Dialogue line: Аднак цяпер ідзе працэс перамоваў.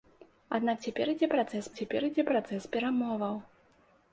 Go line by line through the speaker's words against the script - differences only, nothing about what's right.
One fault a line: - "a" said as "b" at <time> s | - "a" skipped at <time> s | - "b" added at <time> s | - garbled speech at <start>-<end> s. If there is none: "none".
- "цяпер ідзе працэс" added at 1.8 s